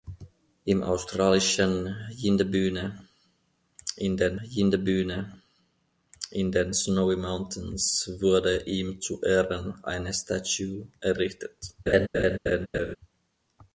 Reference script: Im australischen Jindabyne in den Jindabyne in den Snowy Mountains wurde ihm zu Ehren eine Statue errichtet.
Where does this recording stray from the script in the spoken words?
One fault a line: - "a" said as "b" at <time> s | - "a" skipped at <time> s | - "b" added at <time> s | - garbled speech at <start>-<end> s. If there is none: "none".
none